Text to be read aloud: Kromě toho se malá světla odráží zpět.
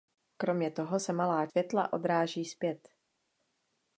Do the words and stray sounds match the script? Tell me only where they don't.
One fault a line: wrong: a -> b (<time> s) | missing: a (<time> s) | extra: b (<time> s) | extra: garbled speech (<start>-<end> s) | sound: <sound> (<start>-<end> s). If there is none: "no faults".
no faults